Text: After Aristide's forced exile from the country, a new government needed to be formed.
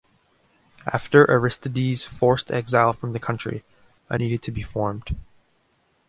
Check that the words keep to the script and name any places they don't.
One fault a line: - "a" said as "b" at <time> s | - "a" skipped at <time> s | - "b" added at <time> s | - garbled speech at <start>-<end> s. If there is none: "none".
- "new government" skipped at 4.2 s